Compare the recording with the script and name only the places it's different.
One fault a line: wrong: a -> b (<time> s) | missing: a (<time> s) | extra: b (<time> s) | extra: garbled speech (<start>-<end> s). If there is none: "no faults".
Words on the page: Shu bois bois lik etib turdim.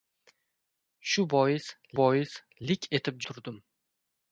no faults